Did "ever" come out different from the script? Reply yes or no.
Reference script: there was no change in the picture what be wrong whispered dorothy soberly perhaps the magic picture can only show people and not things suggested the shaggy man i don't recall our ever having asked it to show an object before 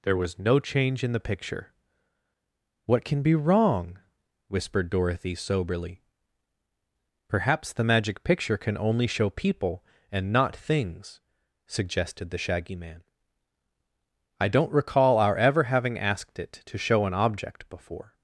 no